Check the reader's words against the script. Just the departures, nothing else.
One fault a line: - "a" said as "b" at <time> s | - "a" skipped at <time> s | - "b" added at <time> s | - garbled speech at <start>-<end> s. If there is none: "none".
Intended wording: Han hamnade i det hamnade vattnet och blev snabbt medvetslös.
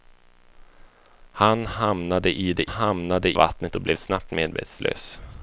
none